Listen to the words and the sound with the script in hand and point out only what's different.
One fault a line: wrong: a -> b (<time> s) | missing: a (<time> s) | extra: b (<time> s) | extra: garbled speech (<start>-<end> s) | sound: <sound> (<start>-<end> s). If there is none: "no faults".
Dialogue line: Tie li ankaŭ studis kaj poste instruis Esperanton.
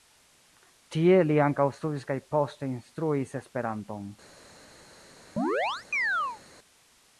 sound: chirp (5.4-6.4 s)